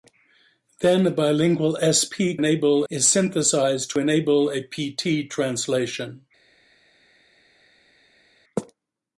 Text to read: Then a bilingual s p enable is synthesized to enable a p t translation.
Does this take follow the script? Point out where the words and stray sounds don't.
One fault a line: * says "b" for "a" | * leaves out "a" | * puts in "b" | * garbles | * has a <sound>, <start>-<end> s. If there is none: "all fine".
all fine